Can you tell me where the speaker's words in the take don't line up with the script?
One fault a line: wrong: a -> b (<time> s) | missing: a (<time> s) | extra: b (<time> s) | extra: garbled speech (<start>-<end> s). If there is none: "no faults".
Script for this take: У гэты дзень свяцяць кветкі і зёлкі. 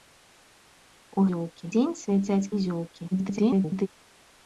wrong: гэты -> зёлкі (1.3 s)
missing: кветкі (2.5 s)
extra: garbled speech (3.1-3.9 s)